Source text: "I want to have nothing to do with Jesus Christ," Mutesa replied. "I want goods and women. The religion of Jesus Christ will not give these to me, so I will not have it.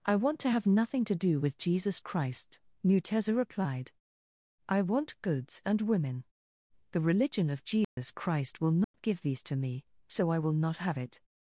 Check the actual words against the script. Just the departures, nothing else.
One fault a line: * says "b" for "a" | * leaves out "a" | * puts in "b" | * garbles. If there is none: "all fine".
all fine